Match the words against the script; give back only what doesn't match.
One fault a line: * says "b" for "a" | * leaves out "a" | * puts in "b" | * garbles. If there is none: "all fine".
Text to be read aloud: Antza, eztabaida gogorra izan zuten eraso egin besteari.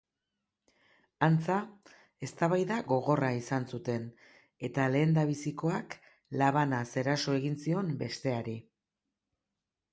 * puts in "eta lehendabizikoak labanaz"
* puts in "zion"